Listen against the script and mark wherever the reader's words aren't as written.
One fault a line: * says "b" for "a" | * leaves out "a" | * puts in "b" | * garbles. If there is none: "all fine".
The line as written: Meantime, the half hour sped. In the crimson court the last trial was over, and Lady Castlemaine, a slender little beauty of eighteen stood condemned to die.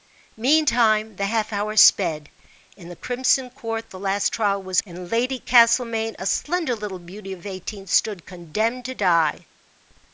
* leaves out "over"